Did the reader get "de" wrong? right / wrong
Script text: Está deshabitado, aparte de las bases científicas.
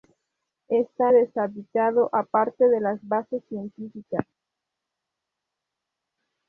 right